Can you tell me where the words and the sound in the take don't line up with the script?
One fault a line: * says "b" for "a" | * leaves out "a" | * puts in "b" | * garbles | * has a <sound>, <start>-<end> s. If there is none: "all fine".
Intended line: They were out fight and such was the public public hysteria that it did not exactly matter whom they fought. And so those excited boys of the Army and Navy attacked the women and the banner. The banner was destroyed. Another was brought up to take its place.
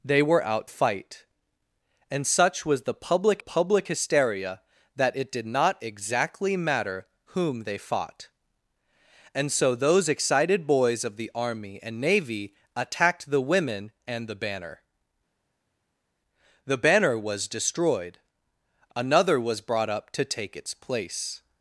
all fine